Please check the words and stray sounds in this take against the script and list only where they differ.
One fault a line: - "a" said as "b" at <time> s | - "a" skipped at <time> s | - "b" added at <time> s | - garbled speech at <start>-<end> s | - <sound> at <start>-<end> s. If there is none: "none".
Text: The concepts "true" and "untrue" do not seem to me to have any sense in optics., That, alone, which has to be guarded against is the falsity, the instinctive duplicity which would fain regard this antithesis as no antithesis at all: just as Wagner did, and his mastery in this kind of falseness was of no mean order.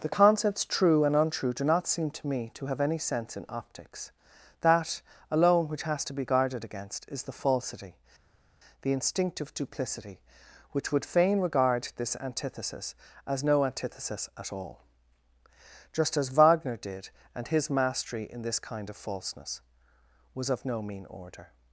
none